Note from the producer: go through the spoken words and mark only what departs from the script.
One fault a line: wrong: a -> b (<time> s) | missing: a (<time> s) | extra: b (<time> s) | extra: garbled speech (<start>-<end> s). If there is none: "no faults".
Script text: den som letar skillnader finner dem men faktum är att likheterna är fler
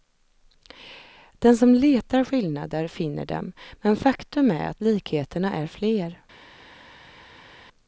no faults